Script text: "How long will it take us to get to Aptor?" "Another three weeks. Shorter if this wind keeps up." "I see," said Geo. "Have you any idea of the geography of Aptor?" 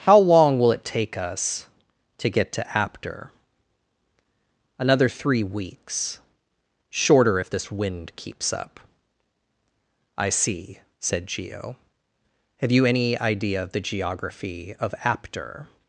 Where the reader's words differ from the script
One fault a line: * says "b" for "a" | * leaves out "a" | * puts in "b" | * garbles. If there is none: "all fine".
all fine